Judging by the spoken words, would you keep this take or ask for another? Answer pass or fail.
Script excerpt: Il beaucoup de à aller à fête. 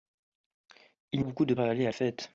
pass